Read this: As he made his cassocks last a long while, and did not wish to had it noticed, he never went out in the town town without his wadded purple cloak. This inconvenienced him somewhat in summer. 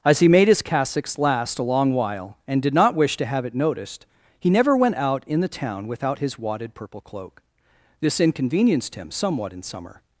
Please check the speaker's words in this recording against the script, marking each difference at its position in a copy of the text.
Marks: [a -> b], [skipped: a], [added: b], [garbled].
As he made his cassocks last a long while, and did not wish to [had -> have] it noticed, he never went out in the town [skipped: town] without his wadded purple cloak. This inconvenienced him somewhat in summer.